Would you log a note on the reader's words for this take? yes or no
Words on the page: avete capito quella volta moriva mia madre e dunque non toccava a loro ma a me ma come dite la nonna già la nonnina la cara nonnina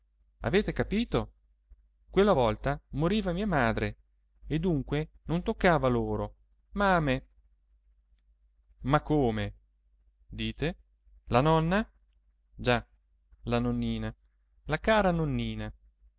no